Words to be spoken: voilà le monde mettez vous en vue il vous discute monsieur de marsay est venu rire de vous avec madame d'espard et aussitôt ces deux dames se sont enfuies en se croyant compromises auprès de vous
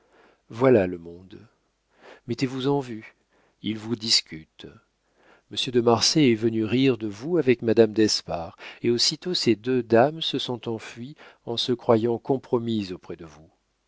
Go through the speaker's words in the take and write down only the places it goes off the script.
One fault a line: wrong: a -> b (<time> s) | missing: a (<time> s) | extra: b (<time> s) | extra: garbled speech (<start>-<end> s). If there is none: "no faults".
no faults